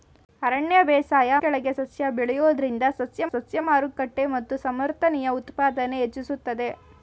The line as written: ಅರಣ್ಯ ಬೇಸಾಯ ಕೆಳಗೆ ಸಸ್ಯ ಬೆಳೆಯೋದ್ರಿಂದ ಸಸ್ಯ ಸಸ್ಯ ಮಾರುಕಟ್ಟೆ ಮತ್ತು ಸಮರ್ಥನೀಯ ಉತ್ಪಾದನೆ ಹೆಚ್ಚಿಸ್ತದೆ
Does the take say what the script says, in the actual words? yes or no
yes